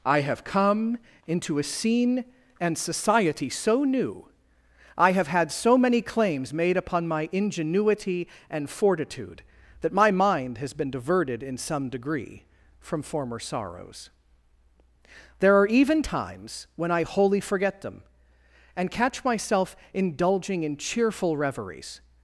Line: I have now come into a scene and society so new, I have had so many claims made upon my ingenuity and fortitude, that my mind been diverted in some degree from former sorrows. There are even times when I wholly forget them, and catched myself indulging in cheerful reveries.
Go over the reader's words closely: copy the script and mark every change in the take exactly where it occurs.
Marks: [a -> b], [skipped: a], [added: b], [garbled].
I have [skipped: now] come into a scene and society so new, I have had so many claims made upon my ingenuity and fortitude, that my mind [added: has] been diverted in some degree from former sorrows. There are even times when I wholly forget them, and [catched -> catch] myself indulging in cheerful reveries.